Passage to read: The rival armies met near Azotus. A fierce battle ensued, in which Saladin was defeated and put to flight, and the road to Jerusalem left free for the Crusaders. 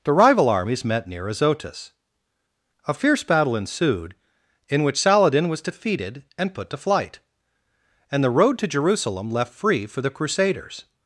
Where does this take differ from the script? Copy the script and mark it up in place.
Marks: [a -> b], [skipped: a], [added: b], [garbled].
The rival armies met near Azotus. A fierce battle ensued, in which Saladin was defeated and put to flight, and the road to Jerusalem left free for the Crusaders.